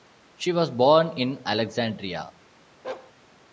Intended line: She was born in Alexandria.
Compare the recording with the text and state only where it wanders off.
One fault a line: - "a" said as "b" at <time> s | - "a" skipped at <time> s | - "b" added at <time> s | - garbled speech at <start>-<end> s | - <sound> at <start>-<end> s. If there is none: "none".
- bark at 2.8-3.1 s